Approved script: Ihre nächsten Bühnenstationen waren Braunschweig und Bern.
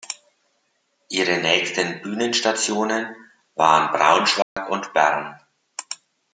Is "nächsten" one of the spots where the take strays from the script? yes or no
no